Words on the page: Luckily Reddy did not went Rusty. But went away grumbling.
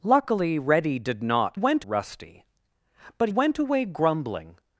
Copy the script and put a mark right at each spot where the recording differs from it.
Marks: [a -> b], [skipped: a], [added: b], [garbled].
Luckily Reddy did not went Rusty. But went away grumbling.